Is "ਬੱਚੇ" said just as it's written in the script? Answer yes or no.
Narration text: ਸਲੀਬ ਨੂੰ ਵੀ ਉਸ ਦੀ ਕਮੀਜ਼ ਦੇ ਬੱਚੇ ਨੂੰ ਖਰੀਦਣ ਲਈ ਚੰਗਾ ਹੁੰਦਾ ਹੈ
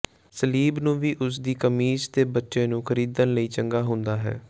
yes